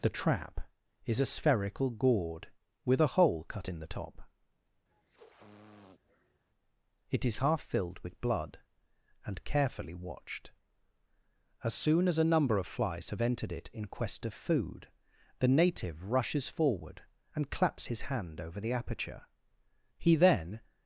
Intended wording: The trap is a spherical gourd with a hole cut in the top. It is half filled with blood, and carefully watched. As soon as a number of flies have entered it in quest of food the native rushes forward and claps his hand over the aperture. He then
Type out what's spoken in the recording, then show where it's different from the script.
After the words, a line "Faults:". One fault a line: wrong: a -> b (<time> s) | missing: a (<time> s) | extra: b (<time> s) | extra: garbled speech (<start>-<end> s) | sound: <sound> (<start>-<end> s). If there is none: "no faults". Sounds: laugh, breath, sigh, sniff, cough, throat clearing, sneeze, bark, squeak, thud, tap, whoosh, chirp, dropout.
The trap is a spherical gourd with a hole cut in the top. It is half filled with blood, and carefully watched. As soon as a number of flies have entered it in quest of food the native rushes forward and claps his hand over the aperture. He then
Faults:
sound: sniff (4.9-6.4 s)